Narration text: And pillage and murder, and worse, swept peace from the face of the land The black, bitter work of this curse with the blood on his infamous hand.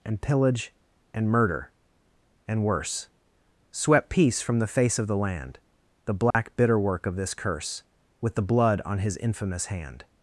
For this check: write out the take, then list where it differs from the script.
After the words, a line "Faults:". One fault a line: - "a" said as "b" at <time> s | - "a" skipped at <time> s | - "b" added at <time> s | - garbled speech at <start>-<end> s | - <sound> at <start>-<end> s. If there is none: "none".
And pillage and murder, and worse, swept peace from the face of the land The black, bitter work of this curse with the blood on his infamous hand.
Faults:
- dropout at 6.3-6.3 s